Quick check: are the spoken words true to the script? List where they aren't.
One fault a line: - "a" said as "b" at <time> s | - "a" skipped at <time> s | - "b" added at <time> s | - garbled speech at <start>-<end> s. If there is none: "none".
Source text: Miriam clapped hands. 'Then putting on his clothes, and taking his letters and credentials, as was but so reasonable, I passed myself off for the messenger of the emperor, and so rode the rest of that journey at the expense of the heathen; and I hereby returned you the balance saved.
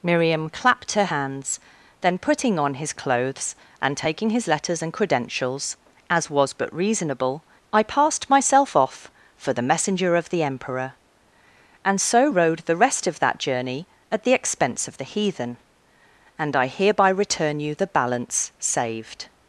- "her" added at 0.9 s
- "so" skipped at 6.7 s
- "returned" said as "return" at 17.1 s